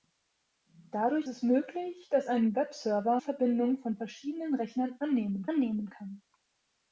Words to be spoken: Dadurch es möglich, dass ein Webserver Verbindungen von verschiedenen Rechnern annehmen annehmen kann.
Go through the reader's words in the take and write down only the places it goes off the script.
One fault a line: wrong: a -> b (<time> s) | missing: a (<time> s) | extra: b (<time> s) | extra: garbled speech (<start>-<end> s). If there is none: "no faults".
no faults